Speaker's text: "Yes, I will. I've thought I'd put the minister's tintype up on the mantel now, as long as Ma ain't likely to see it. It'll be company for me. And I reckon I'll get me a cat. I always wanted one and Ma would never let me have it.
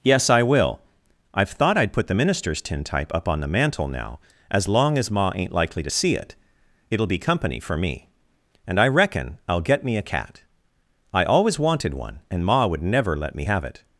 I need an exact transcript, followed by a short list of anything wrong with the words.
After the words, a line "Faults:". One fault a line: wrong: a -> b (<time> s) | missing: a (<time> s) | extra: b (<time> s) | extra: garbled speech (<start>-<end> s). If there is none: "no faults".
"Yes, I will. I've thought I'd put the minister's tintype up on the mantel now, as long as Ma ain't likely to see it. It'll be company for me. And I reckon I'll get me a cat. I always wanted one and Ma would never let me have it.
Faults:
no faults